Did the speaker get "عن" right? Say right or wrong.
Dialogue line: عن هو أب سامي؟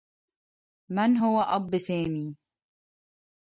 wrong